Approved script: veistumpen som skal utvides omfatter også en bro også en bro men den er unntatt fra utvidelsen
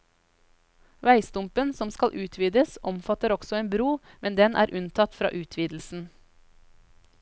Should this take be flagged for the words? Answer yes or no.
yes